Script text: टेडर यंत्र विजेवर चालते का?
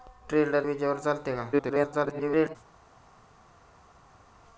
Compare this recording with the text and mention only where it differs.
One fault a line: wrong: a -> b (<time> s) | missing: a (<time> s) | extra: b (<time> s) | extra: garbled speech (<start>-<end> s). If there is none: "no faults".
missing: यंत्र (0.7 s)
extra: garbled speech (1.5-2.6 s)